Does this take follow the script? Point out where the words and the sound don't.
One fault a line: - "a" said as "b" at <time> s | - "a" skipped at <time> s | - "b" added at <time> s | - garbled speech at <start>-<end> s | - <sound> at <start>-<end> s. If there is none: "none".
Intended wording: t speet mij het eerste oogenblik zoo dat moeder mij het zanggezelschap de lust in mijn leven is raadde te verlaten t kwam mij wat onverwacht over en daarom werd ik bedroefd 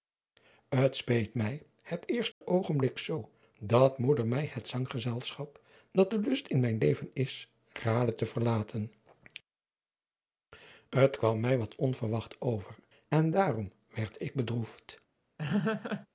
- dropout at 2.3-2.4 s
- "dat" added at 5.9 s
- laugh at 15.4-16.1 s